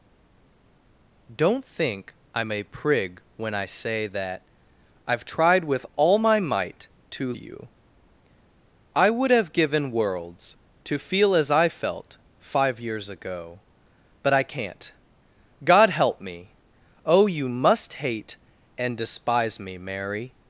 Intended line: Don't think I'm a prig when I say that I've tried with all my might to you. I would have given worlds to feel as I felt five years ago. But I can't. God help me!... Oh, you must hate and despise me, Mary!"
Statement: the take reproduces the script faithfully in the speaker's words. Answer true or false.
true